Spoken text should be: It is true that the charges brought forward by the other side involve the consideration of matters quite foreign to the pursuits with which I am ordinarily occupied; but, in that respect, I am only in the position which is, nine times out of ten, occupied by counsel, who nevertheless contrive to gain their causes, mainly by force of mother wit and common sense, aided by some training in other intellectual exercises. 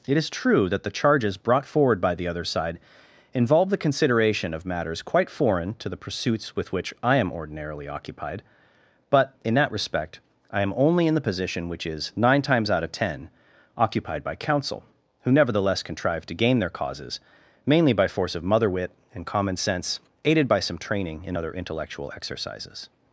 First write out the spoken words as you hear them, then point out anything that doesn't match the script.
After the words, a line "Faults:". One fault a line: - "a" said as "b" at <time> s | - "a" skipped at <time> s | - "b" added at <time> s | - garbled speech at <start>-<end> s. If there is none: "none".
It is true that the charges brought forward by the other side involve the consideration of matters quite foreign to the pursuits with which I am ordinarily occupied; but, in that respect, I am only in the position which is, nine times out of ten, occupied by counsel, who nevertheless contrive to gain their causes, mainly by force of mother wit and common sense, aided by some training in other intellectual exercises.
Faults:
none